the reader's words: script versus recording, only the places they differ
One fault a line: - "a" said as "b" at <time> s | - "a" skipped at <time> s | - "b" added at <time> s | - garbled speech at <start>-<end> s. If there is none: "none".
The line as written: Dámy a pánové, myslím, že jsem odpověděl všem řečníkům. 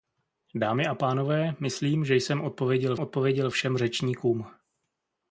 - "odpověděl" added at 3.0 s